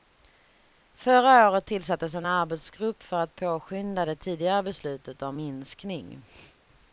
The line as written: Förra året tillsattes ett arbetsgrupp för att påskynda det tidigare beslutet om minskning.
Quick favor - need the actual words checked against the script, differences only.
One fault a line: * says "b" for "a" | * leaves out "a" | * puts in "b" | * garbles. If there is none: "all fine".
* says "en" for "ett"